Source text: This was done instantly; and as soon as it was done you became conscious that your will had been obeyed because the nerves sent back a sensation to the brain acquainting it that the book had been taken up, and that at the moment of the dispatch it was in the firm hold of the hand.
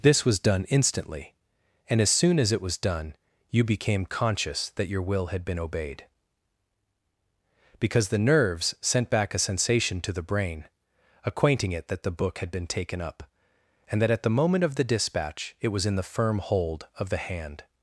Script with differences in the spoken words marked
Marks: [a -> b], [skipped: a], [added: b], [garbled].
This was done instantly; and as soon as it was done you became conscious that your will had been obeyed because the nerves sent back a sensation to the brain acquainting it that the book had been taken up, and that at the moment of the dispatch it was in the firm hold of the hand.